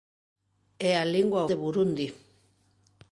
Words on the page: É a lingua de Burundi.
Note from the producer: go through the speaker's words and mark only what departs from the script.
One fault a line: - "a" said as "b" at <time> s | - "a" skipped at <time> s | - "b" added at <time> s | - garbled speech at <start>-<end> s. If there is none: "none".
none